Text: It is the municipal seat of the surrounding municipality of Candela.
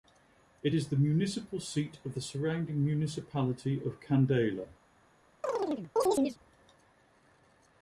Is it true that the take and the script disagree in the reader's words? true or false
false